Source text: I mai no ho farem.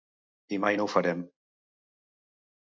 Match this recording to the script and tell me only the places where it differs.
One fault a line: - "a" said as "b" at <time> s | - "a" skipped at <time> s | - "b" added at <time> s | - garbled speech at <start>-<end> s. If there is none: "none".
none